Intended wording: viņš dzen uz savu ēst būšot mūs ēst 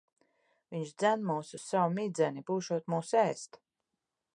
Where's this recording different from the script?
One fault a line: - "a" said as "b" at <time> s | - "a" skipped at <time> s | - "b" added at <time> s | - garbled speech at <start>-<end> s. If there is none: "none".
- "mūs" added at 1.3 s
- "ēst" said as "midzeni" at 2.0 s